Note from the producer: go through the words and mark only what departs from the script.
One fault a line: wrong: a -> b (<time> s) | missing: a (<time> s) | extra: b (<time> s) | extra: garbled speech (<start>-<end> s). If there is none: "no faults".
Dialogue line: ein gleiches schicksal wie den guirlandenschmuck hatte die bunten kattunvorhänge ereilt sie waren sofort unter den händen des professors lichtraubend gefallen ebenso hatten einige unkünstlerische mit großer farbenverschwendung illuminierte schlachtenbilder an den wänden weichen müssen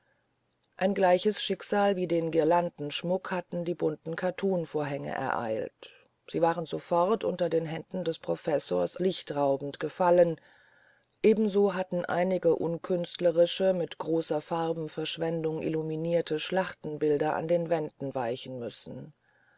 no faults